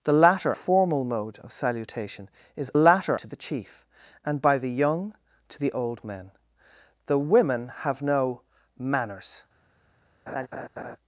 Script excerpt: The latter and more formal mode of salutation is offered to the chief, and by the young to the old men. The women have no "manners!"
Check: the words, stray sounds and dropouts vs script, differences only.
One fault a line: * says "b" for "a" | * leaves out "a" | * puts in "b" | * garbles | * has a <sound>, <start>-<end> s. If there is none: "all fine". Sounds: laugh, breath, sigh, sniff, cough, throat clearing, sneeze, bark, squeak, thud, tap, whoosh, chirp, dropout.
* leaves out "and more"
* says "latter" for "offered"
* has a laugh, 10.3-11.0 s